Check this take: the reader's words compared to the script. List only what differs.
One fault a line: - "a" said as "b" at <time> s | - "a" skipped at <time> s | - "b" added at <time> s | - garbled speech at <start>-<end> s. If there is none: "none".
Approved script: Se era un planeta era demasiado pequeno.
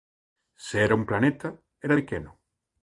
- "demasiado" skipped at 1.9 s